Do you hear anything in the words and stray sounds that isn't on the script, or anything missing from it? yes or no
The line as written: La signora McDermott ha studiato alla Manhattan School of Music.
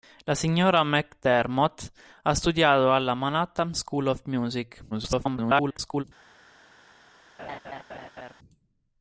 yes